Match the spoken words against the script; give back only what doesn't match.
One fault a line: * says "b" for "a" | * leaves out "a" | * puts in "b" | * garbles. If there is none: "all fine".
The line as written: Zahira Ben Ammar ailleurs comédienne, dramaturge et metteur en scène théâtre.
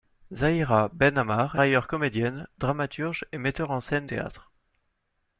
all fine